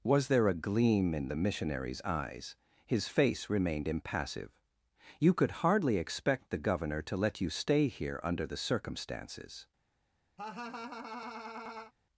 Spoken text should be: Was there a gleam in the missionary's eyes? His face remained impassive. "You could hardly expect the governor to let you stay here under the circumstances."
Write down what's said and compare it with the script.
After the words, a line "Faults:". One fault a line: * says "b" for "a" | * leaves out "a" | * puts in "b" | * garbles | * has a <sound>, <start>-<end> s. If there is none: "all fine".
Was there a gleam in the missionary's eyes? His face remained impassive. "You could hardly expect the governor to let you stay here under the circumstances."
Faults:
* has a laugh, 10.4-11.9 s